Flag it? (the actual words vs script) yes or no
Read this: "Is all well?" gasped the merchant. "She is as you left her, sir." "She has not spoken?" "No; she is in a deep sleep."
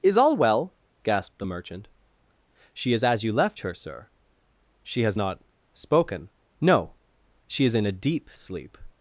no